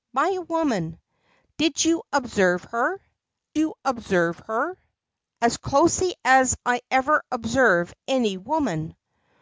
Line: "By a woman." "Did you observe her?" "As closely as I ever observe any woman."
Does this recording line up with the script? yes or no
no